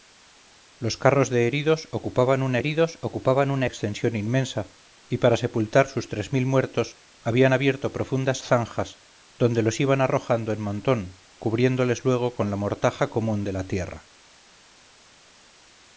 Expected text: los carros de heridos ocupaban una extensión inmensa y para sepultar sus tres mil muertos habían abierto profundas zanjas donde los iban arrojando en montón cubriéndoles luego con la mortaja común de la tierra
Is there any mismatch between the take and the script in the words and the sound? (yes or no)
yes